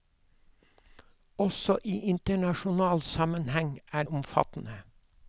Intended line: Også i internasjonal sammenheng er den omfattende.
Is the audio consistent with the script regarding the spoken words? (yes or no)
no